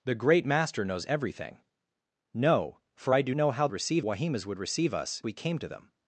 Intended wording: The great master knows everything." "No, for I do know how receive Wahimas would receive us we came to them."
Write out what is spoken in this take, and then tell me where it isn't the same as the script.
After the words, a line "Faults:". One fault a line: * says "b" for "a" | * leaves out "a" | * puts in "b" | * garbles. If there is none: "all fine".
The great master knows everything." "No, for I do know how receive Wahimas would receive us we came to them."
Faults:
all fine